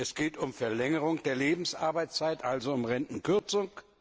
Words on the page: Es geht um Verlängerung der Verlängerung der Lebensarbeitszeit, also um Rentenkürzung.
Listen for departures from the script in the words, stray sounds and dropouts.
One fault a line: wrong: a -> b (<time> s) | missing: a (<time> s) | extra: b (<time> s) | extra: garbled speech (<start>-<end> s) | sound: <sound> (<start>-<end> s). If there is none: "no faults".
missing: Verlängerung der (1.4 s)